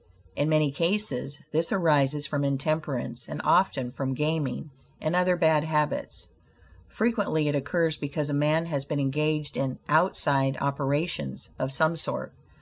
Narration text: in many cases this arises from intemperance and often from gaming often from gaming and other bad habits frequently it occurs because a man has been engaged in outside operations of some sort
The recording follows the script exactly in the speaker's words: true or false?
false